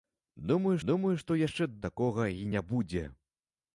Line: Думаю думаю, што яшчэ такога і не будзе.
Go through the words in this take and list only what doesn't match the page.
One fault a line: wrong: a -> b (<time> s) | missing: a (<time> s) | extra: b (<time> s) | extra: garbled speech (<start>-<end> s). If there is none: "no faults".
no faults